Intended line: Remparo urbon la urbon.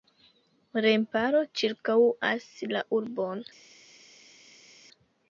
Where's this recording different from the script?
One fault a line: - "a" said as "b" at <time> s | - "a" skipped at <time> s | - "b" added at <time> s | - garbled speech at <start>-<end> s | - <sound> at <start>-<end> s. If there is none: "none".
- "urbon" said as "ĉirkaŭas" at 1.6 s